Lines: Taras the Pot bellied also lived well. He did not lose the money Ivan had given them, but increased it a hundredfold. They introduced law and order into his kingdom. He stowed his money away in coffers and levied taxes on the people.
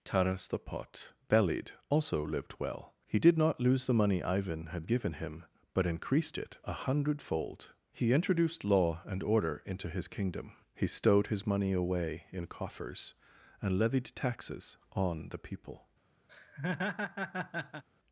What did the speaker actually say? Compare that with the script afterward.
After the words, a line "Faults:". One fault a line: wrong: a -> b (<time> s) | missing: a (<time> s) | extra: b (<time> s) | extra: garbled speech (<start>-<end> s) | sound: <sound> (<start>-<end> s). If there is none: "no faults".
Taras the Pot bellied also lived well. He did not lose the money Ivan had given him, but increased it a hundredfold. He introduced law and order into his kingdom. He stowed his money away in coffers and levied taxes on the people.
Faults:
wrong: them -> him (5.1 s)
wrong: They -> He (7.9 s)
sound: laugh (16.3-17.8 s)